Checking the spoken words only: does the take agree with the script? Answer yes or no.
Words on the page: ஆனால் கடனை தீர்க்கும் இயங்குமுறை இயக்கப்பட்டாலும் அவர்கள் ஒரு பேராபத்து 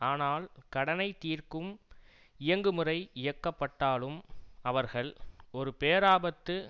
yes